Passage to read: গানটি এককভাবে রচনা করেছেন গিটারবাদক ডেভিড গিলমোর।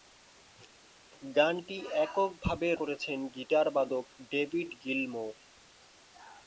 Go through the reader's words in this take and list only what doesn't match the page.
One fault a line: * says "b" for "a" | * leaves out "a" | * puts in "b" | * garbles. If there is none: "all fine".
* leaves out "রচনা"